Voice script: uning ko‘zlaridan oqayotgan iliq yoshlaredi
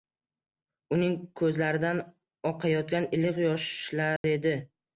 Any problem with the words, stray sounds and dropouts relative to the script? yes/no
yes